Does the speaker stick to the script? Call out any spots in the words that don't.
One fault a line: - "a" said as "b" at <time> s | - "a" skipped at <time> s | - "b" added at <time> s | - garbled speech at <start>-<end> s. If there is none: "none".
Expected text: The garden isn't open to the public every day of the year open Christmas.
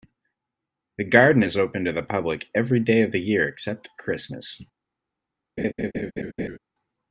- "isn't" said as "is" at 1.4 s
- "open" said as "except" at 3.5 s